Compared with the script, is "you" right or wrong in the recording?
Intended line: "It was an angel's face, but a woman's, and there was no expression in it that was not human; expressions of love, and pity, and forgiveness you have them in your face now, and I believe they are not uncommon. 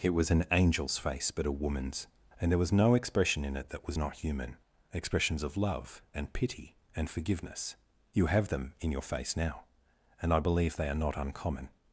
right